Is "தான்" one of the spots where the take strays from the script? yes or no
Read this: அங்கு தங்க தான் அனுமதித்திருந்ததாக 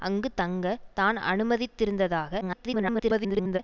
no